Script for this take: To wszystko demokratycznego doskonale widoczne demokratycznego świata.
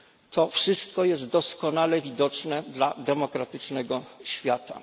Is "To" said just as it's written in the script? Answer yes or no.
yes